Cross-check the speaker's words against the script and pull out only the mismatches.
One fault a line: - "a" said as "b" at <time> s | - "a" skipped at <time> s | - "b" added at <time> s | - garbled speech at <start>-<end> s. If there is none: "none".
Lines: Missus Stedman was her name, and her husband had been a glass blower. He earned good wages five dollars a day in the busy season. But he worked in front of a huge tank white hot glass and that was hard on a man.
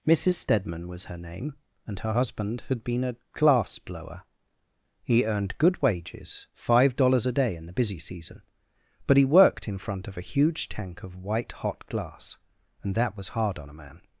- "of" added at 11.0 s